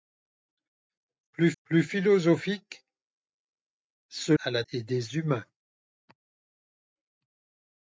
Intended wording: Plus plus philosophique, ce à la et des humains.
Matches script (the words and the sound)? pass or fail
pass